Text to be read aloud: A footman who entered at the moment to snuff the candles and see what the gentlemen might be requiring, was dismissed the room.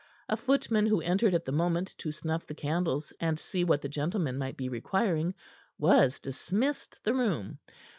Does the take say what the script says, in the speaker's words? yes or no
yes